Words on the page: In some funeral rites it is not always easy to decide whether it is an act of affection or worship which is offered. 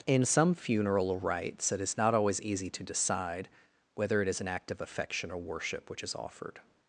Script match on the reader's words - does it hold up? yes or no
yes